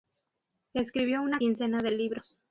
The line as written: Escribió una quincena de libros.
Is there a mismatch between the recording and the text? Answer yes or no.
no